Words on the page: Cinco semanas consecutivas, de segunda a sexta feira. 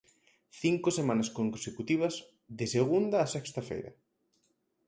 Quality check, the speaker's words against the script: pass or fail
pass